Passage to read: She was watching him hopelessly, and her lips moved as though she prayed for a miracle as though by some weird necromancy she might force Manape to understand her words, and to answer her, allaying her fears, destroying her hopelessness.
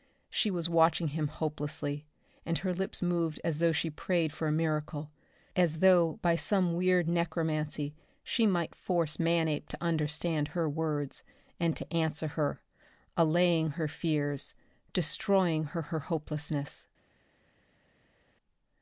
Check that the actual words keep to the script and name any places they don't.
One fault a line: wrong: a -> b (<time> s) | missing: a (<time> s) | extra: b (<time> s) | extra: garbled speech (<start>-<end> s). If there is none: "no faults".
extra: her (15.8 s)